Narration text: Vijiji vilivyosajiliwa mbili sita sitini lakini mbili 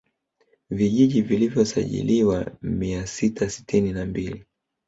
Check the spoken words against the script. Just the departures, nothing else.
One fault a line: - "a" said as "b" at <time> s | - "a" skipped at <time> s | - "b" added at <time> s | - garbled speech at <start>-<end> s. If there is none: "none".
- "mbili" said as "mia" at 2.6 s
- "lakini" said as "na" at 3.9 s